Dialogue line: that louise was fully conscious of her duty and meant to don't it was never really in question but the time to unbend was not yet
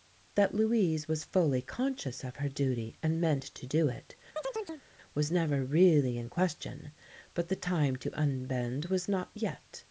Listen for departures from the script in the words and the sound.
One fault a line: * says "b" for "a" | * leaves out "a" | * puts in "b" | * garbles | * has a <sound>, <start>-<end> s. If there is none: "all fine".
* says "do" for "don't"
* has a chirp, 4.4-4.8 s